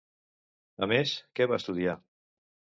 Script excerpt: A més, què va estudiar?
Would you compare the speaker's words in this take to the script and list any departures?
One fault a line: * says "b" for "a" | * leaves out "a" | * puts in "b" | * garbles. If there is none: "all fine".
all fine